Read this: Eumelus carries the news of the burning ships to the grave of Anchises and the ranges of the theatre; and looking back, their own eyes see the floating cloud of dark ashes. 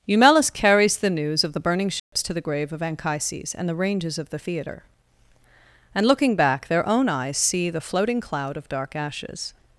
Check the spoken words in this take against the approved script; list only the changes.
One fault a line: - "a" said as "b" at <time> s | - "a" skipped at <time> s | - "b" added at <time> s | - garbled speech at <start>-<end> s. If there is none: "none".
none